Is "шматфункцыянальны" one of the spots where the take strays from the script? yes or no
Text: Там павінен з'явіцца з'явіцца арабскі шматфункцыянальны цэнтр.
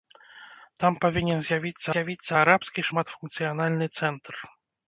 no